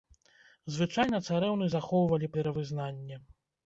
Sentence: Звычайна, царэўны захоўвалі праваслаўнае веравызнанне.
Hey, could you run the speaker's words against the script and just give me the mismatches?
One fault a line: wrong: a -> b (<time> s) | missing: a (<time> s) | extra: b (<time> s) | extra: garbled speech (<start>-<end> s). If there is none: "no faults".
missing: праваслаўнае (2.3 s)